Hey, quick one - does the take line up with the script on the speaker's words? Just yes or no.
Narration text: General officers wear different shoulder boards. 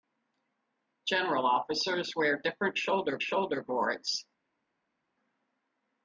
no